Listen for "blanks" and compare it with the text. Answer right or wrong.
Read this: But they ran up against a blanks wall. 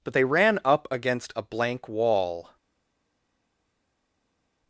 wrong